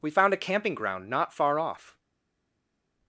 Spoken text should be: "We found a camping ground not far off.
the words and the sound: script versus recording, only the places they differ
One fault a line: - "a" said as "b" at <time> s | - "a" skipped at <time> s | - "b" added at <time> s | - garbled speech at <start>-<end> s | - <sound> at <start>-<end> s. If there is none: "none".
none